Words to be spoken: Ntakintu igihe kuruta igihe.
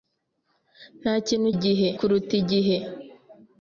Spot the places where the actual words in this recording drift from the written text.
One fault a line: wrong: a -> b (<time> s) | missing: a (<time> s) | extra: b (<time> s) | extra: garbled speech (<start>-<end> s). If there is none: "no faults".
no faults